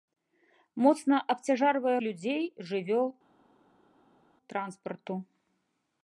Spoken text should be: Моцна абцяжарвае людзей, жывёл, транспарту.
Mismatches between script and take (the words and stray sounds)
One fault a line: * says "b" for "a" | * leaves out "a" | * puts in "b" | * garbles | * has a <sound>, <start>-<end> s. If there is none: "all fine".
all fine